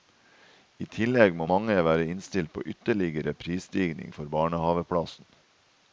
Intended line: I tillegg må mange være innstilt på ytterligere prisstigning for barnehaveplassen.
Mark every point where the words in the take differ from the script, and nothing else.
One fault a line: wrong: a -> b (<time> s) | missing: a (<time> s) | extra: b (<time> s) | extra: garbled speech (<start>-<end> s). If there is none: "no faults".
no faults